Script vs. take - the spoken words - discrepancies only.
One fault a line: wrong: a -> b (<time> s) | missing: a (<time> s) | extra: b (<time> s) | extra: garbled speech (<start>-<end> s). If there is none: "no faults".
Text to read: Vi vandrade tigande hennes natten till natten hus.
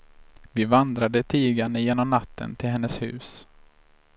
wrong: hennes -> genom (1.8 s)
wrong: natten -> hennes (2.7 s)